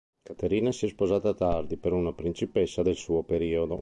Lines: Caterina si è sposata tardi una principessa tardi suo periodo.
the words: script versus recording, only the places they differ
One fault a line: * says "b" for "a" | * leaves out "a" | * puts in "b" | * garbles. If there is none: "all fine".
* puts in "per"
* says "del" for "tardi"